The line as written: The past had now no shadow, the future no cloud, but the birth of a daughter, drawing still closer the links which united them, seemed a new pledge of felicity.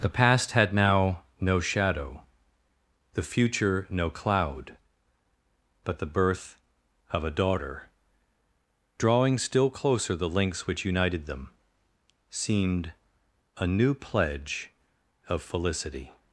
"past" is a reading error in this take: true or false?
false